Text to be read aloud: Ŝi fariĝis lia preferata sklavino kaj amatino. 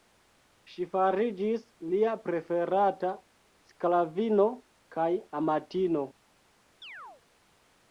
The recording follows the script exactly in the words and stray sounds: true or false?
false